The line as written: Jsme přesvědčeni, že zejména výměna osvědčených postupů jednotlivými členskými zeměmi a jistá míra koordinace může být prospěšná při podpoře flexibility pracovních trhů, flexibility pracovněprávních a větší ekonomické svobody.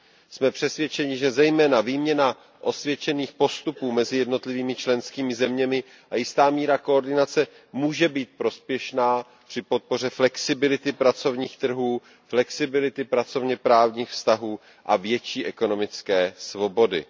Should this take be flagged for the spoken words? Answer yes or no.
yes